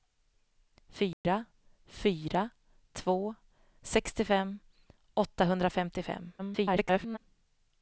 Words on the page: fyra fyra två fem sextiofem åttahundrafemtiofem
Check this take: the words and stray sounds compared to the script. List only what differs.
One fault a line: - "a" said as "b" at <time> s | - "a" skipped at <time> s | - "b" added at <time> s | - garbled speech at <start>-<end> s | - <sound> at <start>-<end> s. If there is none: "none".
- dropout at 1.1-1.2 s
- "fem" skipped at 3.4 s
- garbled speech at 6.4-7.2 s